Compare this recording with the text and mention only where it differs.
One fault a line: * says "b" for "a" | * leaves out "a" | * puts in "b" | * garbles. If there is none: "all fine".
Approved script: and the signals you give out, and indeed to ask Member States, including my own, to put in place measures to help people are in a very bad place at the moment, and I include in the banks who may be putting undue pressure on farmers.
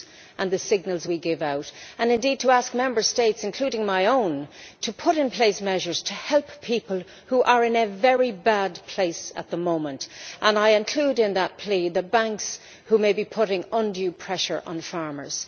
* says "we" for "you"
* puts in "who"
* puts in "that plea"